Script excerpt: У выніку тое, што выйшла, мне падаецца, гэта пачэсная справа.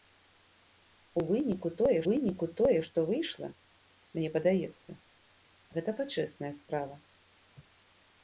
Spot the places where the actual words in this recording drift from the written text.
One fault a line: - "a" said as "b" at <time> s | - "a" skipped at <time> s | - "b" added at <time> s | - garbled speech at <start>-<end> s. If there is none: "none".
- "выніку тое" added at 2.1 s